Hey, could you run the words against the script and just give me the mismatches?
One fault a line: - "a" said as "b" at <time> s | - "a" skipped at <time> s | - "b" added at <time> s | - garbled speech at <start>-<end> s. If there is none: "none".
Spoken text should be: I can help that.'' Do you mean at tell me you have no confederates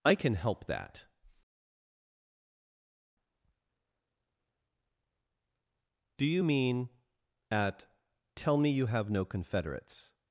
none